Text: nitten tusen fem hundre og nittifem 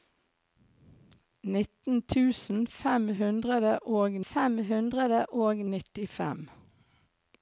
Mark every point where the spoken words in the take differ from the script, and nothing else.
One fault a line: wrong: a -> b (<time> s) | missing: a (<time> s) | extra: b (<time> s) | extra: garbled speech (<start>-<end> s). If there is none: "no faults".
extra: fem hundre og (4.3 s)